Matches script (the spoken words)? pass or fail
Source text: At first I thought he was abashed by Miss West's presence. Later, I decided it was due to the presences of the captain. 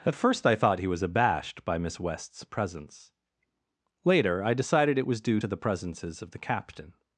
pass